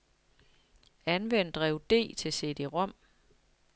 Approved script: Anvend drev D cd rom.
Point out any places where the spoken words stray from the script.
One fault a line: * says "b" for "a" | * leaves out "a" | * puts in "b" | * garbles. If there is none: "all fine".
* puts in "til"